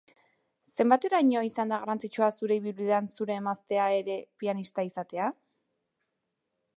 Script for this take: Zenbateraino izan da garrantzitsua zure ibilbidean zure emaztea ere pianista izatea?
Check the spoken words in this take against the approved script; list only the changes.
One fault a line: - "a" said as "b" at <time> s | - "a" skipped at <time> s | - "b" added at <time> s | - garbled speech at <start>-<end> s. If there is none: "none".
none